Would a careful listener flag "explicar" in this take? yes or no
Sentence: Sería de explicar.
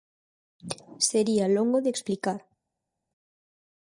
no